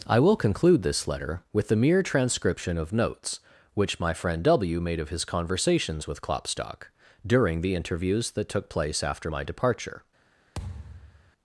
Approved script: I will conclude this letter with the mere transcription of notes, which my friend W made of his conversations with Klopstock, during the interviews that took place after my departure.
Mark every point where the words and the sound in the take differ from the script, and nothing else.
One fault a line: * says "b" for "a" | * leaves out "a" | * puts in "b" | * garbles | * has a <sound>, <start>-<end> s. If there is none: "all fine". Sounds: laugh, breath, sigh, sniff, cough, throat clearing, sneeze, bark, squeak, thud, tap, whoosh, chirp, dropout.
* has a thud, 10.6-11.3 s